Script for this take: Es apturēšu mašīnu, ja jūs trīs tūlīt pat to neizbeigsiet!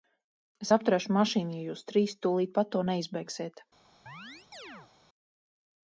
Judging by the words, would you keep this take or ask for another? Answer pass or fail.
pass